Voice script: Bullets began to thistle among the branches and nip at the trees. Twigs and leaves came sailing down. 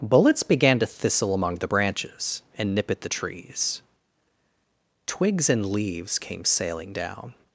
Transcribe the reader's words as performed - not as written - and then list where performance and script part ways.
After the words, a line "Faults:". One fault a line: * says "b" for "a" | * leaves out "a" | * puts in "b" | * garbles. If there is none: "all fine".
Bullets began to thistle among the branches and nip at the trees. Twigs and leaves came sailing down.
Faults:
all fine